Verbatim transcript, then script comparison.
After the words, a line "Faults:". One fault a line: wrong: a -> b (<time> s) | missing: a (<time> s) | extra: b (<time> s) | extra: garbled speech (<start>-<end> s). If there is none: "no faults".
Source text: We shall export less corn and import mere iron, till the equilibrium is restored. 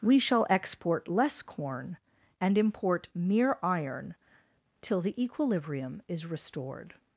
We shall export less corn and import mere iron, till the equilibrium is restored.
Faults:
no faults